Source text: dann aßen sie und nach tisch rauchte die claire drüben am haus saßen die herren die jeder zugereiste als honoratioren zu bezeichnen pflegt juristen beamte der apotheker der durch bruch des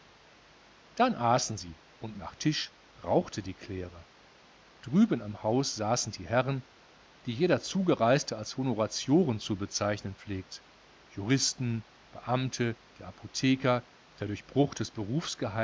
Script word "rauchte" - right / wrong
right